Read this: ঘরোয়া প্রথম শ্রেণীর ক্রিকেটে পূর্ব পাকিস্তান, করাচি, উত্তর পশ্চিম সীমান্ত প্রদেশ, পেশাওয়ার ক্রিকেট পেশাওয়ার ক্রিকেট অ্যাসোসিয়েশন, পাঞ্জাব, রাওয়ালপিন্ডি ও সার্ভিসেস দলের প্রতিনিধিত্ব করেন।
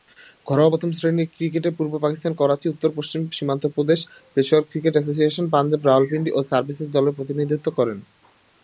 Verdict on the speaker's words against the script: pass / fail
fail